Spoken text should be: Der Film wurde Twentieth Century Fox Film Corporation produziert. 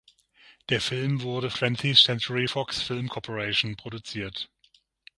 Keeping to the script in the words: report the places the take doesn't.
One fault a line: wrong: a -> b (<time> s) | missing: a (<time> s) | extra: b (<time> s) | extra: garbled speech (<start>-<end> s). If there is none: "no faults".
no faults